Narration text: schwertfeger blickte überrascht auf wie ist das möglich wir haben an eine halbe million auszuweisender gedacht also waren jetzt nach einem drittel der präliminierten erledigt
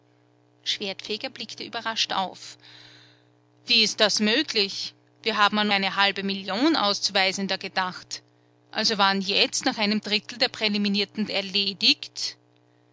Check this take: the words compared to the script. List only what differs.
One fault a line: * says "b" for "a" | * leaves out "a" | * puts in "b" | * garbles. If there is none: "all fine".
all fine